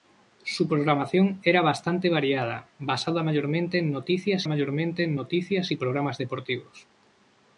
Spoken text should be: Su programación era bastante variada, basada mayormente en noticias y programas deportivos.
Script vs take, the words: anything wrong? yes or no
yes